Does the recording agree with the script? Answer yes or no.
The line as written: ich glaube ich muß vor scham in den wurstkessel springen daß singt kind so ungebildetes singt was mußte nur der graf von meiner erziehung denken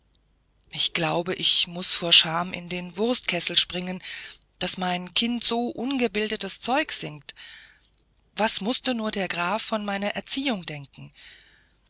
no